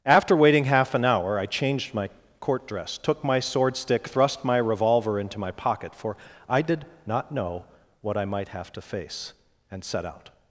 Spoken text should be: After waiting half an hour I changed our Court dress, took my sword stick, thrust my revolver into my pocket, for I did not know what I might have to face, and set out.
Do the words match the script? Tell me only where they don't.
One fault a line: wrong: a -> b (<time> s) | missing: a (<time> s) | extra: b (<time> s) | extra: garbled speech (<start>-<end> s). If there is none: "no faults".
wrong: our -> my (1.9 s)